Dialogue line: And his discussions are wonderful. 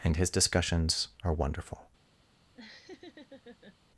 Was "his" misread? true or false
false